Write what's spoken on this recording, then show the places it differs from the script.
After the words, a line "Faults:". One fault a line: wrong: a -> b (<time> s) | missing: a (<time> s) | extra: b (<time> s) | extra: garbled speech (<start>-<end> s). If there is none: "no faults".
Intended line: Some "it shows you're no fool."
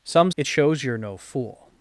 Some "it shows you're no fool."
Faults:
no faults